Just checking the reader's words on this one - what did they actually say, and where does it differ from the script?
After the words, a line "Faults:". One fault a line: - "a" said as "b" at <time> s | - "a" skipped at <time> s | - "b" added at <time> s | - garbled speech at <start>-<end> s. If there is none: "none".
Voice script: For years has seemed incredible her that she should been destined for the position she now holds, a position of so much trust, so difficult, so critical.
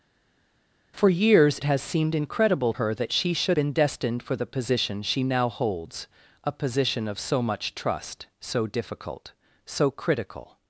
For years has seemed incredible her that she should been destined for the position she now holds, a position of so much trust, so difficult, so critical.
Faults:
none